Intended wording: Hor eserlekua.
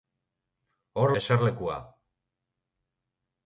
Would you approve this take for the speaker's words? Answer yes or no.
yes